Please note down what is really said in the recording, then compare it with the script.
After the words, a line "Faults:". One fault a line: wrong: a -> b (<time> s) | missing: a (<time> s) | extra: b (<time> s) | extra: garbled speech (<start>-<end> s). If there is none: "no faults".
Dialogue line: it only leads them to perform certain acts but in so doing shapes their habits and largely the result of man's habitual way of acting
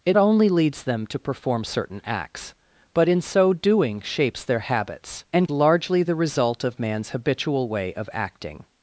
it only leads them to perform certain acts but in so doing shapes their habits and largely the result of man's habitual way of acting
Faults:
no faults